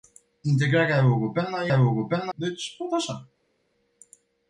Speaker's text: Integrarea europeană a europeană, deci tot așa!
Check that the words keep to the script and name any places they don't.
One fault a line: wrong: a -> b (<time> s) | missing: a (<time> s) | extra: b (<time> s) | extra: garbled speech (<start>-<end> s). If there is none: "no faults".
no faults